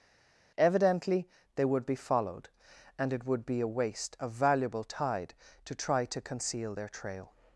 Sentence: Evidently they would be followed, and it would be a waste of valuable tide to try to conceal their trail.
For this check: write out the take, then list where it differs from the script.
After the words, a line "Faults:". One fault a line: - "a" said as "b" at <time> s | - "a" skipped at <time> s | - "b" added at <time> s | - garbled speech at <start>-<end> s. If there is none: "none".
Evidently they would be followed, and it would be a waste of valuable tide to try to conceal their trail.
Faults:
none